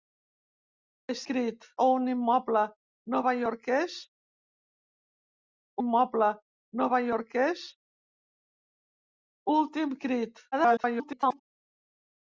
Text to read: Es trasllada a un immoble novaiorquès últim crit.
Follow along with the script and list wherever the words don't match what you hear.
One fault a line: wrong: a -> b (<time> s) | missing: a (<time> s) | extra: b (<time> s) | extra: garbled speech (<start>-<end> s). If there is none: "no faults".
wrong: trasllada -> crit (1.3 s)
extra: immoble novaiorquès (5.8 s)
extra: garbled speech (10.5-11.4 s)